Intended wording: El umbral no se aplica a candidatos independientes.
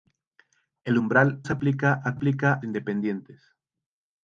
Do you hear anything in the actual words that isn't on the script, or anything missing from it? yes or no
yes